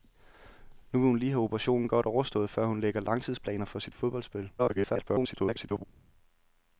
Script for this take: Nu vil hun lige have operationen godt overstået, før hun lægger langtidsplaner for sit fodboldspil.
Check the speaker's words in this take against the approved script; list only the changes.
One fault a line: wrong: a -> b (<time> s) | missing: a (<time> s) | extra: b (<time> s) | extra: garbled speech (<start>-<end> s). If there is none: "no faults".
extra: garbled speech (4.6-5.8 s)